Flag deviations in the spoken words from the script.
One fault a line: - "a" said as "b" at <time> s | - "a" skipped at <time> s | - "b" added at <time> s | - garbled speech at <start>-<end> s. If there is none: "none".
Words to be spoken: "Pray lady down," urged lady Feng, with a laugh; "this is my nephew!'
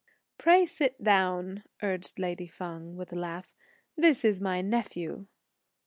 - "lady" said as "sit" at 0.7 s